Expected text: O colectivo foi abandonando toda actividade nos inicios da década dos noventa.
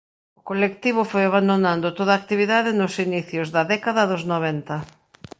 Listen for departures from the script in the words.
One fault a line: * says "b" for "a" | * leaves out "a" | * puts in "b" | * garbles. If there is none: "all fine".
all fine